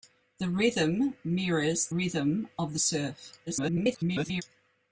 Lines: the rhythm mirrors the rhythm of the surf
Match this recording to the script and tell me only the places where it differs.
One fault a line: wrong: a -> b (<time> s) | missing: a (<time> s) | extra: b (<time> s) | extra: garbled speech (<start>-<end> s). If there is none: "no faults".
missing: the (1.9 s)
extra: garbled speech (3.5-4.4 s)